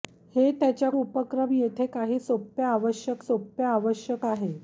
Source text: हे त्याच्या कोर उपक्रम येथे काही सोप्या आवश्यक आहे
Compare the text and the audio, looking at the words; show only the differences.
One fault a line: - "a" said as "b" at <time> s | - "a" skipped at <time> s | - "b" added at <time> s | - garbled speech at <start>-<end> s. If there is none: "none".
- "कोर" skipped at 0.9 s
- "सोप्या आवश्यक" added at 3.2 s